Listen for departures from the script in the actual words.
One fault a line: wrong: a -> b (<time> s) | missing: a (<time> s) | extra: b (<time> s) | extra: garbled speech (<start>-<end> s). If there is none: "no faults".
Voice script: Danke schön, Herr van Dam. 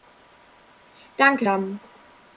missing: schön Herr van (1.4 s)